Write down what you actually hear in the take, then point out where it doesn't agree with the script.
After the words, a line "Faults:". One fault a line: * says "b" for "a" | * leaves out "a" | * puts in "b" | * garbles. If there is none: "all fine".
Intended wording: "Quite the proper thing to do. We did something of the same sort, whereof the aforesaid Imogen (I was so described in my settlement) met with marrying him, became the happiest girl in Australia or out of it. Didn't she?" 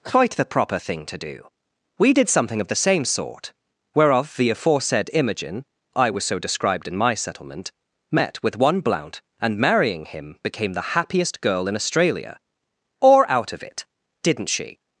"Quite the proper thing to do. We did something of the same sort, whereof the aforesaid Imogen (I was so described in my settlement) met with one Blount, and marrying him, became the happiest girl in Australia or out of it. Didn't she?"
Faults:
* puts in "one Blount and"